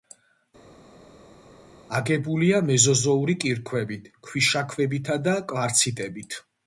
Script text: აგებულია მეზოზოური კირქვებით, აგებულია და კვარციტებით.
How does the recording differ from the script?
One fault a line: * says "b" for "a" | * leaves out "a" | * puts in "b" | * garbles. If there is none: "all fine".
* says "ქვიშაქვებითა" for "აგებულია"